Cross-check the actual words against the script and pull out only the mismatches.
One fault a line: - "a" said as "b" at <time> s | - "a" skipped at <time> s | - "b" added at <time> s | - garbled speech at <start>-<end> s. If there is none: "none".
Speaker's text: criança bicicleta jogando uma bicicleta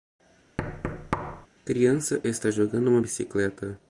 - "bicicleta" said as "está" at 2.2 s